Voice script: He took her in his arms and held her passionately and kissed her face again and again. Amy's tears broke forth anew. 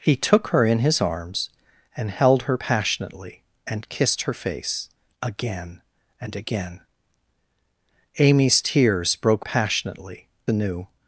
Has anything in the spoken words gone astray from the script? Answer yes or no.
yes